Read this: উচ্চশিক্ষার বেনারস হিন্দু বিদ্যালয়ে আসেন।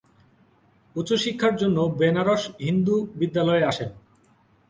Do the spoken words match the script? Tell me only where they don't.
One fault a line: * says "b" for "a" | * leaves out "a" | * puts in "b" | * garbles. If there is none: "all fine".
* puts in "জন্য"